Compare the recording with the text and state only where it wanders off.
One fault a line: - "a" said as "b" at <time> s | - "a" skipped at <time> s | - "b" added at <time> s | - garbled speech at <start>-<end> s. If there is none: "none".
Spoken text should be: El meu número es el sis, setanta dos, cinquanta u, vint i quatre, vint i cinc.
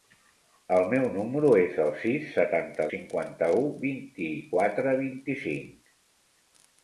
- "dos" skipped at 2.9 s